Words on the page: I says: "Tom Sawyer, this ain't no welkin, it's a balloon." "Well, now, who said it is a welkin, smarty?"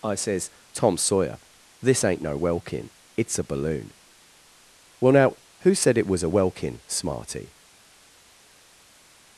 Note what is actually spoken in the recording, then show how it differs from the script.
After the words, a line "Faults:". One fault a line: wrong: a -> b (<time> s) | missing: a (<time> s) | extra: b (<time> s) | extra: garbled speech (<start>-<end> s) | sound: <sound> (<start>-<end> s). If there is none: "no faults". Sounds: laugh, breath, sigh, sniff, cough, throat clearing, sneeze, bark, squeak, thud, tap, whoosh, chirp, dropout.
I says: "Tom Sawyer, this ain't no welkin, it's a balloon." "Well, now, who said it was a welkin, smarty?"
Faults:
wrong: is -> was (6.1 s)